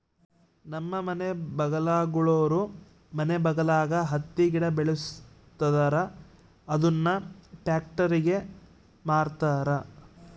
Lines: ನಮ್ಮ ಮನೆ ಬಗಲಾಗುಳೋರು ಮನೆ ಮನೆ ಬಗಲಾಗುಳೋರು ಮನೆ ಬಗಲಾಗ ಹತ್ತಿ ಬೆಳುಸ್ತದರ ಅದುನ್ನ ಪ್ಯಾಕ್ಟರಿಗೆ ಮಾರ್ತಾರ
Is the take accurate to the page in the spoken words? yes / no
no